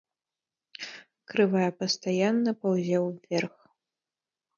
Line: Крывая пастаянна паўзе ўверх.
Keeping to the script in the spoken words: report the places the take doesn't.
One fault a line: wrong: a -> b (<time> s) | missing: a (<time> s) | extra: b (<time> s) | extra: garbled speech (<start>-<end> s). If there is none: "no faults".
no faults